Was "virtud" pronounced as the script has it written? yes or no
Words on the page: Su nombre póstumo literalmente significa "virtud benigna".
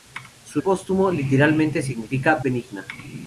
no